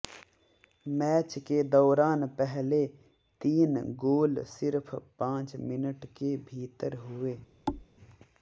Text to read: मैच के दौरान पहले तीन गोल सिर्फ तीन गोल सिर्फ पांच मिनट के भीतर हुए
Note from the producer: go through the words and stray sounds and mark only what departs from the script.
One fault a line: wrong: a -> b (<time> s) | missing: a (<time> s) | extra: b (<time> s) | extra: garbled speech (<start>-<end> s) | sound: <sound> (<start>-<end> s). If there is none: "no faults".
missing: तीन गोल सिर्फ (4.9 s)
sound: thud (7.7-7.9 s)